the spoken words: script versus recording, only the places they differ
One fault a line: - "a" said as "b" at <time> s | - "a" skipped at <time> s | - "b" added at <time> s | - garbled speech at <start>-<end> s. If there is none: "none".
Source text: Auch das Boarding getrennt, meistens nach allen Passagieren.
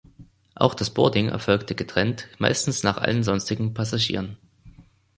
- "erfolgte" added at 1.3 s
- "sonstigen" added at 3.2 s